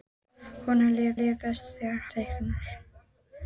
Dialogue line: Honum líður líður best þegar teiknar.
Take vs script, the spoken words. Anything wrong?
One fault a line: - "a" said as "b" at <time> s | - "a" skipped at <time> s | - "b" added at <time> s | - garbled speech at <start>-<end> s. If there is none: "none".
none